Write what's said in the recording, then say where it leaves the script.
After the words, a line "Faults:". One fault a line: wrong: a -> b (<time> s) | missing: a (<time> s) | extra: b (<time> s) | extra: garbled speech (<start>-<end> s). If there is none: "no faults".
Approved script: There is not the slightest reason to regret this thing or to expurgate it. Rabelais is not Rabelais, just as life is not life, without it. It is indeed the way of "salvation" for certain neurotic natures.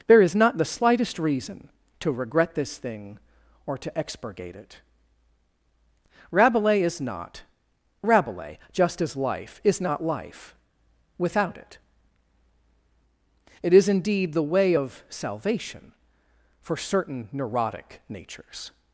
There is not the slightest reason to regret this thing or to expurgate it. Rabelais is not Rabelais, just as life is not life, without it. It is indeed the way of "salvation" for certain neurotic natures.
Faults:
no faults